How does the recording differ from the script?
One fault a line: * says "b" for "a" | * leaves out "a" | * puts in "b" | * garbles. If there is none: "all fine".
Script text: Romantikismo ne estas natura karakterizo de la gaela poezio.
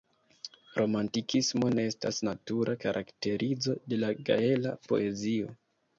all fine